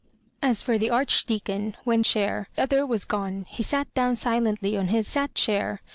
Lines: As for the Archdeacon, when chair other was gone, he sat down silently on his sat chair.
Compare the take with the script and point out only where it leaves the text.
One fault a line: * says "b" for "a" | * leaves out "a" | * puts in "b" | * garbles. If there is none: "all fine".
all fine